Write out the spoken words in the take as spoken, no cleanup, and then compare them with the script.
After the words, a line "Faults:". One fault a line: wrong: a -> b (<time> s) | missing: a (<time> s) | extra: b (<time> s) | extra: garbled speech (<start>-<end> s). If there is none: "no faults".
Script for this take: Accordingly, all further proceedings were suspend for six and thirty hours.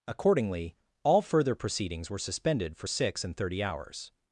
Accordingly, all further proceedings were suspended for six and thirty hours.
Faults:
wrong: suspend -> suspended (2.2 s)